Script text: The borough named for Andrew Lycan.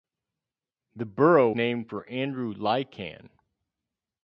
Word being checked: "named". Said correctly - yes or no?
yes